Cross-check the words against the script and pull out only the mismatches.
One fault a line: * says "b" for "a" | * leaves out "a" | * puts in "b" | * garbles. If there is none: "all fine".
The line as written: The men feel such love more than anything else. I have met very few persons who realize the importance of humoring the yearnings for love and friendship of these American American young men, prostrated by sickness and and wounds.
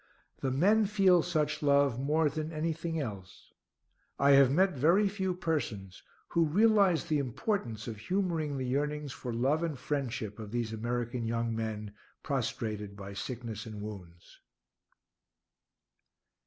* leaves out "American"
* leaves out "and"